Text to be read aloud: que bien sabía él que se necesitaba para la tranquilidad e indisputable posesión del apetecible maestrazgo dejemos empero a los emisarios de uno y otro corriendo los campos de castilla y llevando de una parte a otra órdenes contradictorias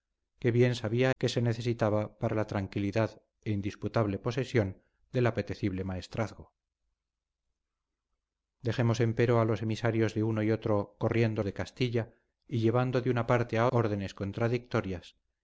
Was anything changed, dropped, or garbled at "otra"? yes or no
yes